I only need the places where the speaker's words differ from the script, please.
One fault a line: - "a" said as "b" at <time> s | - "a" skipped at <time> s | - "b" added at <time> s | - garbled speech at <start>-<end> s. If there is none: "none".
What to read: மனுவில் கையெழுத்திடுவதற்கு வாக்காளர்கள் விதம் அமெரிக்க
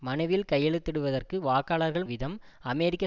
none